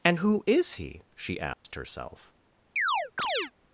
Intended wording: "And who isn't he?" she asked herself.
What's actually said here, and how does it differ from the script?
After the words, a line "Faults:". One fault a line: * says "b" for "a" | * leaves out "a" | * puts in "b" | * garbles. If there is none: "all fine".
"And who is he?" she asked herself.
Faults:
* says "is" for "isn't"